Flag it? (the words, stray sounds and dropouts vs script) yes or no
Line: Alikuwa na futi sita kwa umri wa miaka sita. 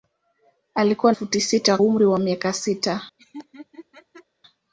yes